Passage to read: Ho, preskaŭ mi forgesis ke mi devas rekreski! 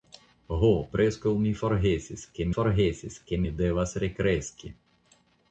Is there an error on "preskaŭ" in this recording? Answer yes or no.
no